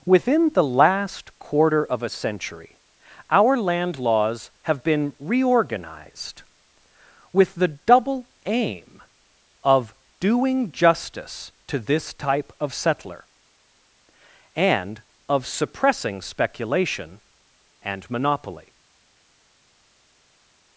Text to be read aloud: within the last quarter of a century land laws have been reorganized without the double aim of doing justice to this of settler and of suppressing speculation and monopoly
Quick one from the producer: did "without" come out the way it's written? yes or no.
no